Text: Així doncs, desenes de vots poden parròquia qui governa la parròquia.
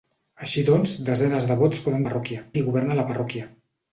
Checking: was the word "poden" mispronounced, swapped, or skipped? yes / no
no